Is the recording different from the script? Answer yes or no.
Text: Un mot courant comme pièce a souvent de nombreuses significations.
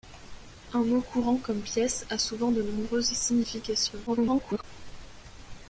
yes